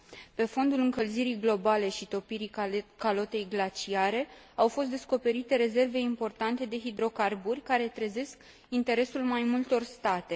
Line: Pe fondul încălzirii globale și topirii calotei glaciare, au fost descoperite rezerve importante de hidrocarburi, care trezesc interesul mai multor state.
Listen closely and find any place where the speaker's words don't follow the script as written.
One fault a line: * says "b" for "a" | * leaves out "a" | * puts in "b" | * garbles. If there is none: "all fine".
all fine